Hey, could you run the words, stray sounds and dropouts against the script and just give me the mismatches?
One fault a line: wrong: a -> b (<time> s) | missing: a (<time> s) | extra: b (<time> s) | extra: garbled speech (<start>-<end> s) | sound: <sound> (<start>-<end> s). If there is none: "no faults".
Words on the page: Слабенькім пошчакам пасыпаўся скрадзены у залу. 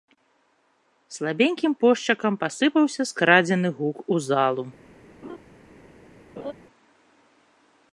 extra: гук (3.8 s)
sound: laugh (5.2-5.4 s)
sound: laugh (6.4-6.5 s)